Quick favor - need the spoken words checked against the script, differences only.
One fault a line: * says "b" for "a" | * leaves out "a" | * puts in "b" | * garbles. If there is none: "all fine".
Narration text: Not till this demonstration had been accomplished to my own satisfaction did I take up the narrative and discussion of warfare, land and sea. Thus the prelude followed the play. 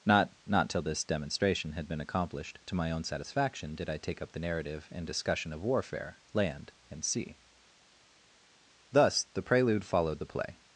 * puts in "not"